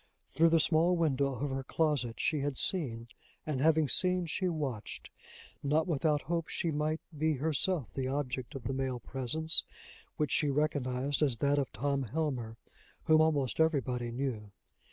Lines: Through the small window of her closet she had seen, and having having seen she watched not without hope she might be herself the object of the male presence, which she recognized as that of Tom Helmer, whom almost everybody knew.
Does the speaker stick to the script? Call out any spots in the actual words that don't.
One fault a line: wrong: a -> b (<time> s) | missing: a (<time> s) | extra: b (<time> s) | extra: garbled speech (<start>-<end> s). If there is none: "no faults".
missing: having (3.9 s)